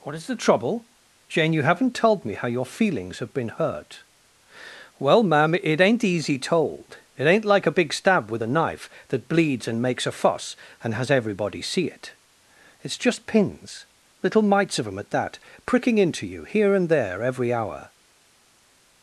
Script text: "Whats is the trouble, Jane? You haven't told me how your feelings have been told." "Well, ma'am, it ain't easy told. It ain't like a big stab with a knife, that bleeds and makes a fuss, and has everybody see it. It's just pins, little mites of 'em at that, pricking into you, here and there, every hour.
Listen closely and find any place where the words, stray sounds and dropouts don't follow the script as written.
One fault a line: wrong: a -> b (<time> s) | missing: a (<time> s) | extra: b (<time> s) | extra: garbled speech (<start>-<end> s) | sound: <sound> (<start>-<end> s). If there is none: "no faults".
wrong: Whats -> What (0.0 s)
wrong: told -> hurt (3.5 s)